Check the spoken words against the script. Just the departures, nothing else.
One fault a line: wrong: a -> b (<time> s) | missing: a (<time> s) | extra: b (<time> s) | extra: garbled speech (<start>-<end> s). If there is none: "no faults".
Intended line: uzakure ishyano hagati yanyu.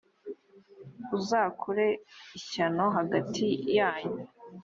no faults